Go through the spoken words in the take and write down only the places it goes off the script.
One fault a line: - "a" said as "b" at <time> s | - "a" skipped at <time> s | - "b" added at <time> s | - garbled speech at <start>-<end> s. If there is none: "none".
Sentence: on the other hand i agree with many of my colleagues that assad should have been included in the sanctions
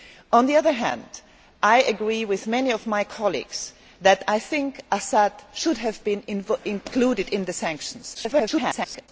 - garbled speech at 8.1-9.1 s